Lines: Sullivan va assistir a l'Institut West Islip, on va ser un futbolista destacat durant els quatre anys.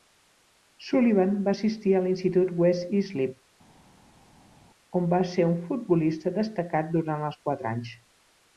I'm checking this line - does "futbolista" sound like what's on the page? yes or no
yes